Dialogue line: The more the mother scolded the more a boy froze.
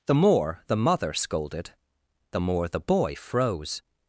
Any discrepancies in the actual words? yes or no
yes